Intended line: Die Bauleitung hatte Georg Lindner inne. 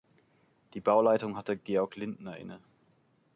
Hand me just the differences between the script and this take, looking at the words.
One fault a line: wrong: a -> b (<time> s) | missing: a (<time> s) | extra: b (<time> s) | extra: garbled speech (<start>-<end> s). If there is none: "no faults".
no faults